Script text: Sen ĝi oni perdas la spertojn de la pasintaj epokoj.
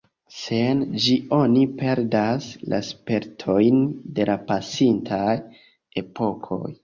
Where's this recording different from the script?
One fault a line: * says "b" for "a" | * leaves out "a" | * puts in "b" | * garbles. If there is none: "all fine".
all fine